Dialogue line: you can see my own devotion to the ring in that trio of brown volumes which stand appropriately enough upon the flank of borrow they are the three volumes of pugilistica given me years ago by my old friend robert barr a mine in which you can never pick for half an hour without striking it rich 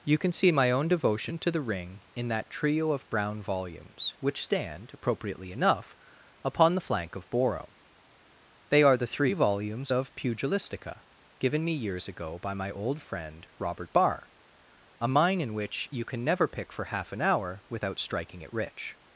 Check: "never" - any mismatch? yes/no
no